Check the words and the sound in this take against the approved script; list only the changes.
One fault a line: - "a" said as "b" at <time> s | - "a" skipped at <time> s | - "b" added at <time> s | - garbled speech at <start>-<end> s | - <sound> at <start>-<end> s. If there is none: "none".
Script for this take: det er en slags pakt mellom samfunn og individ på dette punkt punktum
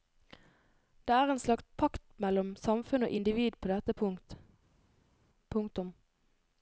none